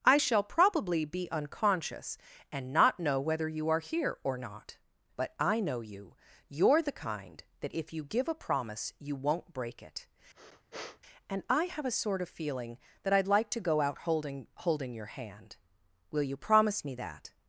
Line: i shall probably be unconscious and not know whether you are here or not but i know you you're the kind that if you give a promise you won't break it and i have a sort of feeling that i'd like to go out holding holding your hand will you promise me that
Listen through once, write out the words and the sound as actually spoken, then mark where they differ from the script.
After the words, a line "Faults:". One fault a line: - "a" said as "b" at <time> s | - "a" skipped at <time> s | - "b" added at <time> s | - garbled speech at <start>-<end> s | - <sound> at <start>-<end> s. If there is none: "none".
i shall probably be unconscious and not know whether you are here or not but i know you you're the kind that if you give a promise you won't break it and i have a sort of feeling that i'd like to go out holding holding your hand will you promise me that
Faults:
- sniff at 10.3-11.0 s